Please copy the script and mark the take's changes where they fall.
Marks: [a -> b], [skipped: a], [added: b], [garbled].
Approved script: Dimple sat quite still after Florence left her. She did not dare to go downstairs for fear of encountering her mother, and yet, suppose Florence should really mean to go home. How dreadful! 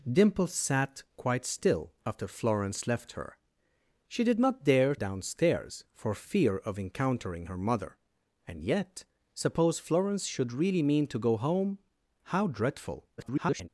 Dimple sat quite still after Florence left her. She did not dare [skipped: to go] downstairs for fear of encountering her mother, and yet, suppose Florence should really mean to go home. How dreadful! [garbled]